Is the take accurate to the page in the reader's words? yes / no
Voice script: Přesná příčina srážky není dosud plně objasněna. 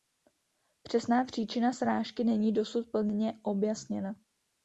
yes